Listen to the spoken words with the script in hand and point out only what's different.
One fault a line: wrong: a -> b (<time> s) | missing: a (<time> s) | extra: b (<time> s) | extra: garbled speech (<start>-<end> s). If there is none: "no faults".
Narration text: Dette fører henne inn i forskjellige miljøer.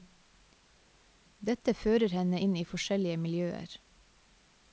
no faults